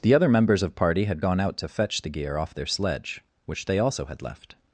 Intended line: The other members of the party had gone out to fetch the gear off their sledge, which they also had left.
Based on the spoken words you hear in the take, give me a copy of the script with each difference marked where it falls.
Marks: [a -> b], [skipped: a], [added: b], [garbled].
The other members of [skipped: the] party had gone out to fetch the gear off their sledge, which they also had left.